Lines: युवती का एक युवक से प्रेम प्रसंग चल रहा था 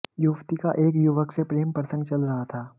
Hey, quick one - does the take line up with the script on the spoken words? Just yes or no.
yes